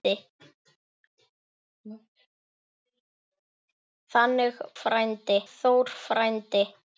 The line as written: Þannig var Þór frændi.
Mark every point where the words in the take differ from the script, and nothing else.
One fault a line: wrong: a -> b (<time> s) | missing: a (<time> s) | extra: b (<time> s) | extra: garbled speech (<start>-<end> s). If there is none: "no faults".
wrong: var -> frændi (4.8 s)